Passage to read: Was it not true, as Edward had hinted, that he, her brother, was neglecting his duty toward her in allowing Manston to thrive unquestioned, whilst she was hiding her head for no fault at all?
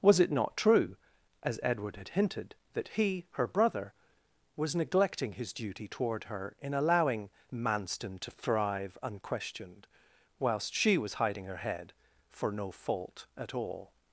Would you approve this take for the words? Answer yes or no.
yes